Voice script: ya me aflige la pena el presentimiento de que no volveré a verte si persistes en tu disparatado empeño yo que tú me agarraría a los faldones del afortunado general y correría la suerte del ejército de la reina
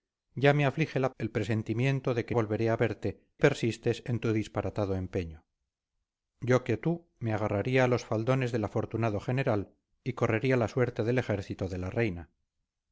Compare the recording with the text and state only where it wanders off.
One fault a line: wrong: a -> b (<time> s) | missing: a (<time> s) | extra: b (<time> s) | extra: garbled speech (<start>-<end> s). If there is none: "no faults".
missing: pena (1.1 s)
missing: no (2.3 s)
missing: si (3.2 s)